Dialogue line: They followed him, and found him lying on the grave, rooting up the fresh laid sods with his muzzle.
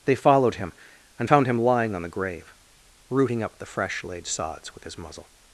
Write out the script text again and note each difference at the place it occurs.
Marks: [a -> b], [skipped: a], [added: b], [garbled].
They followed him, and found him lying on the grave, rooting up the fresh laid sods with his muzzle.